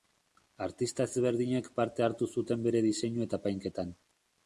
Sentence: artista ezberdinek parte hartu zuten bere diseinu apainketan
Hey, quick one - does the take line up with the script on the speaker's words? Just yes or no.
no